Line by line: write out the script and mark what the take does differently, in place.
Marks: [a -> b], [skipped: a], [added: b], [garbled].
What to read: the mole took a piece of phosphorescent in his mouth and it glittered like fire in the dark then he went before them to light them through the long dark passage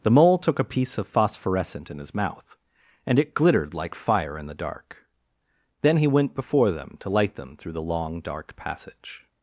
the mole took a piece of phosphorescent in his mouth and it glittered like fire in the dark then he went before them to light them through the long dark passage